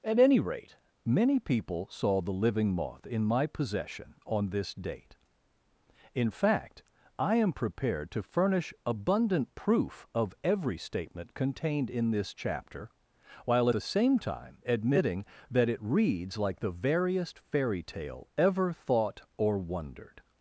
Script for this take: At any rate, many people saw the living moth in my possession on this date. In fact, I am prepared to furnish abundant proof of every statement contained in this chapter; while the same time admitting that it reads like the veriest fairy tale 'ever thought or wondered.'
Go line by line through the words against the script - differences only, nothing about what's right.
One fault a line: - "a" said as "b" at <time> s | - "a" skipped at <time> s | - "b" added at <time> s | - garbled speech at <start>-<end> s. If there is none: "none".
none